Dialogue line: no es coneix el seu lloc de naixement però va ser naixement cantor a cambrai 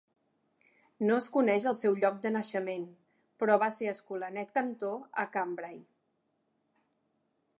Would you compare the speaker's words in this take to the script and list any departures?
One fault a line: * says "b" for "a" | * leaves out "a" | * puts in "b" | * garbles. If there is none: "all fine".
* says "escolanet" for "naixement"